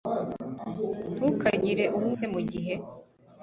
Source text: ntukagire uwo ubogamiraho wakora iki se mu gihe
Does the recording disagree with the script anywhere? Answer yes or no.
yes